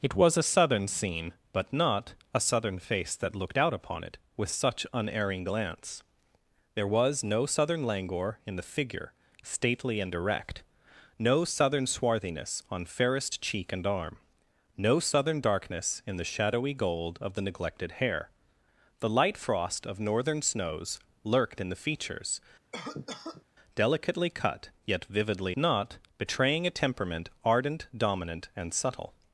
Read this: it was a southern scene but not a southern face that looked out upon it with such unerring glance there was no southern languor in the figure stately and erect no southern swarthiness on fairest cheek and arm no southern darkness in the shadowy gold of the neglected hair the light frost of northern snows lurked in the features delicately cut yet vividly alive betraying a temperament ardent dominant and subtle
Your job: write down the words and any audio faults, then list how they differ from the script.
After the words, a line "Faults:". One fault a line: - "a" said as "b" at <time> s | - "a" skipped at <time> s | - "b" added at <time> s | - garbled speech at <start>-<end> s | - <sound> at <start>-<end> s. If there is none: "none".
it was a southern scene but not a southern face that looked out upon it with such unerring glance there was no southern languor in the figure stately and erect no southern swarthiness on fairest cheek and arm no southern darkness in the shadowy gold of the neglected hair the light frost of northern snows lurked in the features delicately cut yet vividly not betraying a temperament ardent dominant and subtle
Faults:
- cough at 22.7-23.4 s
- "alive" said as "not" at 25.5 s